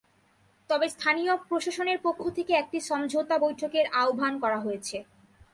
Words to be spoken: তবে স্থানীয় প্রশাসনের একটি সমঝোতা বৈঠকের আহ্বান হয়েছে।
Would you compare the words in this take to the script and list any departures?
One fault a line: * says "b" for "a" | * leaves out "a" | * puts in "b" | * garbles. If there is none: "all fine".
* puts in "পক্ষ থেকে"
* puts in "করা"